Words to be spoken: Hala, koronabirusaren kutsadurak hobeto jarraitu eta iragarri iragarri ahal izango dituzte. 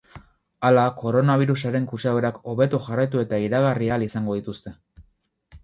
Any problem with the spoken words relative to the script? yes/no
yes